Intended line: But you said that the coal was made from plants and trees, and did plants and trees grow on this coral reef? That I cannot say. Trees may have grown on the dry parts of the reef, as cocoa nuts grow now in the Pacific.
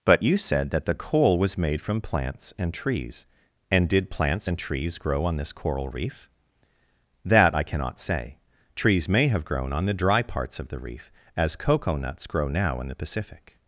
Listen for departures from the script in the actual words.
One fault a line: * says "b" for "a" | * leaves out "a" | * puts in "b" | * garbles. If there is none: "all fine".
all fine